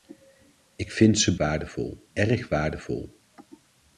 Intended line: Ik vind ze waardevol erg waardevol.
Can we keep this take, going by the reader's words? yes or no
yes